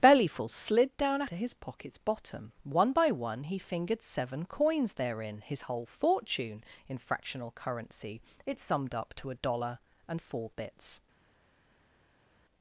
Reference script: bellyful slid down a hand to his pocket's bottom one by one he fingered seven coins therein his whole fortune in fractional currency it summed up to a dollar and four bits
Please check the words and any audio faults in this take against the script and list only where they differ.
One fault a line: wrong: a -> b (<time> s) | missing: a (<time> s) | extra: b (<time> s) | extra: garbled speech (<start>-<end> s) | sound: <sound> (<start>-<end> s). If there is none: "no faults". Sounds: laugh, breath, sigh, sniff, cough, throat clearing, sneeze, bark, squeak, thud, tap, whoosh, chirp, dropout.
missing: hand (1.3 s)